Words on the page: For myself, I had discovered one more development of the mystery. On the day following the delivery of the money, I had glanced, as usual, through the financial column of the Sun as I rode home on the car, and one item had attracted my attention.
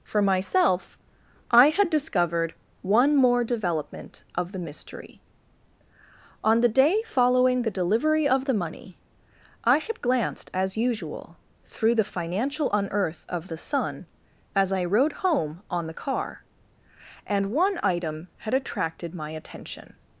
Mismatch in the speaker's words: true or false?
true